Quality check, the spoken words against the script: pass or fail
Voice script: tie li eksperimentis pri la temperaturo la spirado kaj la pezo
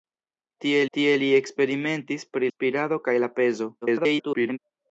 fail